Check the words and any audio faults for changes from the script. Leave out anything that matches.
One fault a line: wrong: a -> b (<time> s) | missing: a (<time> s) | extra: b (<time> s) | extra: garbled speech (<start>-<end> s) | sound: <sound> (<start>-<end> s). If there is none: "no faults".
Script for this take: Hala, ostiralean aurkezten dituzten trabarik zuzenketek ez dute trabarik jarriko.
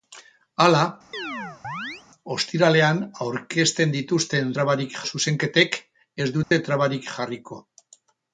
sound: chirp (1.1-2.0 s)
sound: dropout (6.4-6.5 s)